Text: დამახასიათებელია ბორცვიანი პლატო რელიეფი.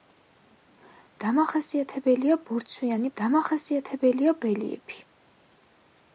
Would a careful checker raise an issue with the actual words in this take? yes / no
yes